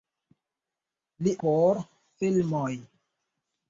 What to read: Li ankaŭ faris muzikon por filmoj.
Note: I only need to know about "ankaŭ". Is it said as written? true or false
false